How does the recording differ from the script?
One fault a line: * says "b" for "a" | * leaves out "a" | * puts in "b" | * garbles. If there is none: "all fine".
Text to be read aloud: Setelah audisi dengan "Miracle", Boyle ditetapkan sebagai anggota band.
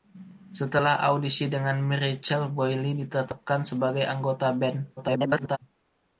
* garbles